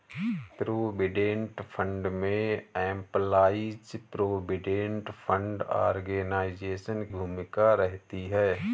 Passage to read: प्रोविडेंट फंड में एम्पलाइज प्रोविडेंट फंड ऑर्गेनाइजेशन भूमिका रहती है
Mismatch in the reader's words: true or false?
false